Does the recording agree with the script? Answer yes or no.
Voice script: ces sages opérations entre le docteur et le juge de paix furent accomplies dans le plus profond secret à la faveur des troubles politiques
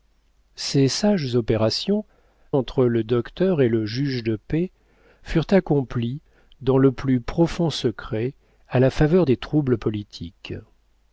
yes